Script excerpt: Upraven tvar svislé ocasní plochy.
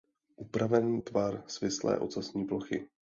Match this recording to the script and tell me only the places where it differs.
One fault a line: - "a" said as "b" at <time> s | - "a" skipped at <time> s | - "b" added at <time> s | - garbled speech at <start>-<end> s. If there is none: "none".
none